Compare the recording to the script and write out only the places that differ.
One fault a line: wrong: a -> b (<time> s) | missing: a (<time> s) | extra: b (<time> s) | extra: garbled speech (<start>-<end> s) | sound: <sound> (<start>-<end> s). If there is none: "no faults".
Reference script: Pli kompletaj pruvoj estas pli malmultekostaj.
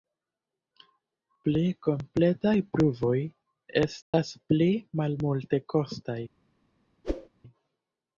sound: dropout (4.0-4.1 s)
sound: whoosh (7.0-7.3 s)